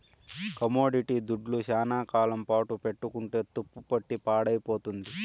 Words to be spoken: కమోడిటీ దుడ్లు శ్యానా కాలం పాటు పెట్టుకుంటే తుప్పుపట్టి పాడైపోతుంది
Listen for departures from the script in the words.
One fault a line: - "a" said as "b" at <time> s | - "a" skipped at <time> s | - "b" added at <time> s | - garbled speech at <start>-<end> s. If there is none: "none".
none